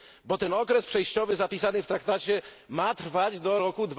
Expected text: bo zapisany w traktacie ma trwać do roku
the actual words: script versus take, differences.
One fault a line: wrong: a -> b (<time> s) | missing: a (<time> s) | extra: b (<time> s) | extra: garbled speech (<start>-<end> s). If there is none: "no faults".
extra: ten okres przejściowy (0.4 s)